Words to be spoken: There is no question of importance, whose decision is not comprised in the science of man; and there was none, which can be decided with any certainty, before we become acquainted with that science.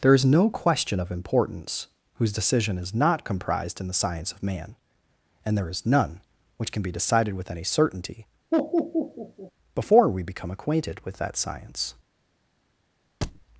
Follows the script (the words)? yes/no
no